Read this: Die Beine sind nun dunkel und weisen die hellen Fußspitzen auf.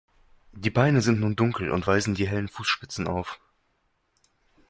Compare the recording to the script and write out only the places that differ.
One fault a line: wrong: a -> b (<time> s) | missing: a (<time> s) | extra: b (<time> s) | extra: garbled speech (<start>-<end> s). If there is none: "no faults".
no faults